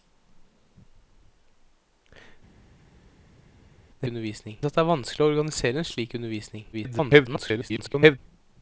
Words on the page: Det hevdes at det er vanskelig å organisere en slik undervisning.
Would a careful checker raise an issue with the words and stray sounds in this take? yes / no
yes